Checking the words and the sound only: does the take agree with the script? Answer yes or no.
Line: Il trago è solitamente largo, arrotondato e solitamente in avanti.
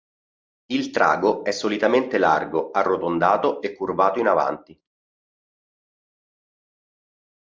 no